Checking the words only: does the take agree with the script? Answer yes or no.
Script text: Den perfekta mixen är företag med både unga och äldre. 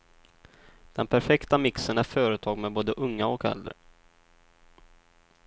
yes